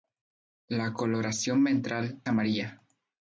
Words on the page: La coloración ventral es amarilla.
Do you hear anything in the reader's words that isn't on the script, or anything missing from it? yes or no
yes